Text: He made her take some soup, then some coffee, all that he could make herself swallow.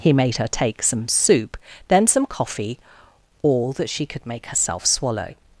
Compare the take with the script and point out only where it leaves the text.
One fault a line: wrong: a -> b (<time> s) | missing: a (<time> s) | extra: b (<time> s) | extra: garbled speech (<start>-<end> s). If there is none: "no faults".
wrong: he -> she (3.9 s)